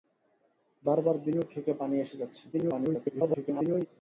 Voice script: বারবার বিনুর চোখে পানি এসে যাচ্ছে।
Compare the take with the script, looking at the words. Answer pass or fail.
fail